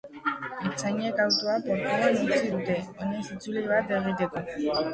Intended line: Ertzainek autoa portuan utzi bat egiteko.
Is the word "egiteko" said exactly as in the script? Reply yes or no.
yes